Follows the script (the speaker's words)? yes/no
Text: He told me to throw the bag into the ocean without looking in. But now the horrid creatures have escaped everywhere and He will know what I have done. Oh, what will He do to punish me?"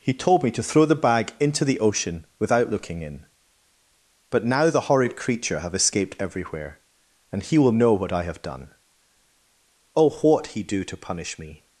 no